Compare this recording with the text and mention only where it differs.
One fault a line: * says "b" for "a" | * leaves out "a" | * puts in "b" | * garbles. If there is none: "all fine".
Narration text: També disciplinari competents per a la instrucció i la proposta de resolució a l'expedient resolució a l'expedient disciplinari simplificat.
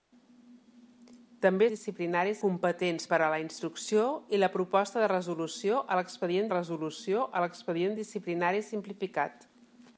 all fine